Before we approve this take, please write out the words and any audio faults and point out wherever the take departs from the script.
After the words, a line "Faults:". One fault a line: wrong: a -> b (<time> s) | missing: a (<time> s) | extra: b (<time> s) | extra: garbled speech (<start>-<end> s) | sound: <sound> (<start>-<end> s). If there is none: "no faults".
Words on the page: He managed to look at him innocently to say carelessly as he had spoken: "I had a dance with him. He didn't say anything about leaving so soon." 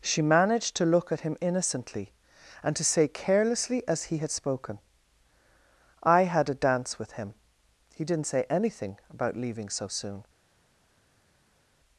She managed to look at him innocently and to say carelessly as he had spoken: "I had a dance with him. He didn't say anything about leaving so soon."
Faults:
wrong: He -> She (0.0 s)
extra: and (2.6 s)